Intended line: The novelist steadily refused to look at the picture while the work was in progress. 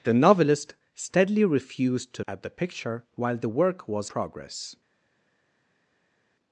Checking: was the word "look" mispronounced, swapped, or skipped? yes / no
yes